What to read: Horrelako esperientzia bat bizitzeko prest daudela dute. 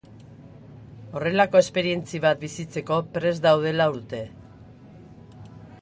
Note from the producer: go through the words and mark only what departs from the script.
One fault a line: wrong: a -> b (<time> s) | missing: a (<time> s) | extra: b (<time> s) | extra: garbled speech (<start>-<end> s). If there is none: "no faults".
no faults